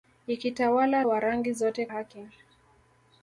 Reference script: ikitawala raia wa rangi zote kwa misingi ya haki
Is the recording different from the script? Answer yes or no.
yes